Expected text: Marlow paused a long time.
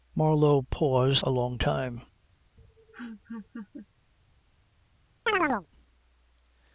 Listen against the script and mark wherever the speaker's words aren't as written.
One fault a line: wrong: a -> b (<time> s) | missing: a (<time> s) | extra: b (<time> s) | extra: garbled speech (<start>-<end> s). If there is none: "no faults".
no faults